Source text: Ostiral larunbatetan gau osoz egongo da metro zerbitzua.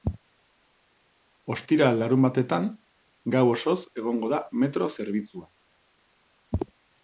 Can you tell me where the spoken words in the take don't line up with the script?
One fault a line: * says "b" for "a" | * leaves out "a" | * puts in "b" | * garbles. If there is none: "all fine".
all fine